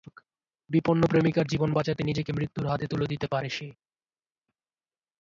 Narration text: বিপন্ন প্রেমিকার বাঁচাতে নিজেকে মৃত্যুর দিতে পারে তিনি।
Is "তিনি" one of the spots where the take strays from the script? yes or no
yes